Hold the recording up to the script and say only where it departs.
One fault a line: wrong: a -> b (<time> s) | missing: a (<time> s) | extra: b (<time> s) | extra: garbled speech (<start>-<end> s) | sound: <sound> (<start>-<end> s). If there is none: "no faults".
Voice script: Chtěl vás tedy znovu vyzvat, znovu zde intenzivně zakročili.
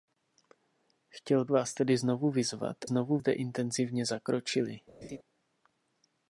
sound: laugh (5.0-5.2 s)